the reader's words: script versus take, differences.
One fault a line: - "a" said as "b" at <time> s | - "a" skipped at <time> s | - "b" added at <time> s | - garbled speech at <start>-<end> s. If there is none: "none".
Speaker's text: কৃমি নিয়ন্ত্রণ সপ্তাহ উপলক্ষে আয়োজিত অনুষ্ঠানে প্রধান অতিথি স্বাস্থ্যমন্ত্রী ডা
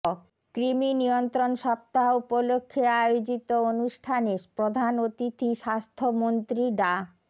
none